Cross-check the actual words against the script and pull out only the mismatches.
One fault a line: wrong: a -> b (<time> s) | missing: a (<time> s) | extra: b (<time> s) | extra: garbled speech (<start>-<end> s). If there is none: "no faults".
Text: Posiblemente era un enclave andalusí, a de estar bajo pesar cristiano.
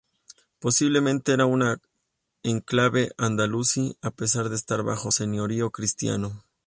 extra: pesar (4.1 s)
wrong: pesar -> señorío (5.1 s)